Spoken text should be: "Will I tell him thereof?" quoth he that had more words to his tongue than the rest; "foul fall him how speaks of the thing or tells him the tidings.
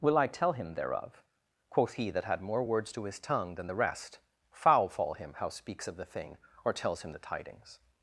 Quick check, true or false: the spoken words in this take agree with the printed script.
true